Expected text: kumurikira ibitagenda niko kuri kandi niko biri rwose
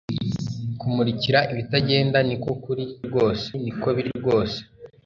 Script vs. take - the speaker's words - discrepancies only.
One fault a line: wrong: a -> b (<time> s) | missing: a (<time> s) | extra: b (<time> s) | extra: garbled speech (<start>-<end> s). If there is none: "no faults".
wrong: kandi -> rwose (3.1 s)